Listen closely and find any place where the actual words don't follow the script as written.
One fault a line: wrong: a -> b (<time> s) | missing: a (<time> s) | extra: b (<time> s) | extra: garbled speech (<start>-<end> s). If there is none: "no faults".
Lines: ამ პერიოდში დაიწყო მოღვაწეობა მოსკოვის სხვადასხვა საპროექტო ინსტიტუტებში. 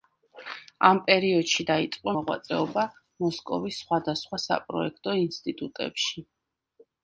no faults